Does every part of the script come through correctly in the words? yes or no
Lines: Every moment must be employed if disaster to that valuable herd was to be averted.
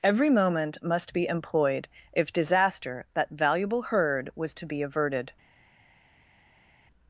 no